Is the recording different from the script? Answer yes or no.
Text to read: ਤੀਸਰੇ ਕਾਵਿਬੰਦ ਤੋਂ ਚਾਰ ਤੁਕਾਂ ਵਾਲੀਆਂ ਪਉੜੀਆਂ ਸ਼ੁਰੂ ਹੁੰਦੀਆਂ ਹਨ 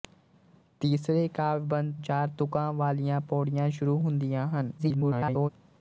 yes